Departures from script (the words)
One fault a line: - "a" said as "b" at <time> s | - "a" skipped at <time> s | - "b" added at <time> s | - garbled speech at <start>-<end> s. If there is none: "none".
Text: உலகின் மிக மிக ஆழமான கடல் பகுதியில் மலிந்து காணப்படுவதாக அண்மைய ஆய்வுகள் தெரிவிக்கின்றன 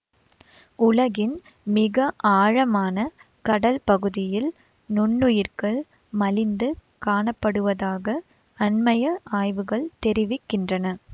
- "மிக" skipped at 2.0 s
- "நுண்ணுயிர்கள்" added at 4.9 s